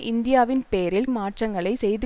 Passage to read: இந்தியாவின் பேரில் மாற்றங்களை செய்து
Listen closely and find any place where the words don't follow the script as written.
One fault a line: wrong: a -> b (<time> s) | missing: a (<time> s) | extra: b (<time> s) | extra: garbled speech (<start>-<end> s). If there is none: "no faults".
no faults